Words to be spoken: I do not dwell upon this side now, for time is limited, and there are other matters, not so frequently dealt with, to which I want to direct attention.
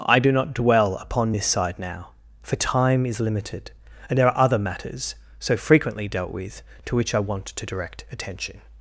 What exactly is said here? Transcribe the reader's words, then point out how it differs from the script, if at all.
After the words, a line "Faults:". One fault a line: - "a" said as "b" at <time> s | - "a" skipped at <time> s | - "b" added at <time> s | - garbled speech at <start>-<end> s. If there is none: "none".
I do not dwell upon this side now, for time is limited, and there are other matters, so frequently dealt with, to which I want to direct attention.
Faults:
- "not" skipped at 5.1 s